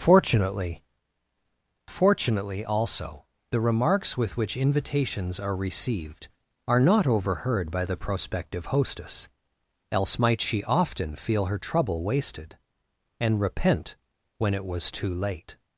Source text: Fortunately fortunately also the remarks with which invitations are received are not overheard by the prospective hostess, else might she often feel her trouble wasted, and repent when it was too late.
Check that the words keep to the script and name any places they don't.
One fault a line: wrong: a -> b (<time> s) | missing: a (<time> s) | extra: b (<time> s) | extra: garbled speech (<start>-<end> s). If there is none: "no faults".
no faults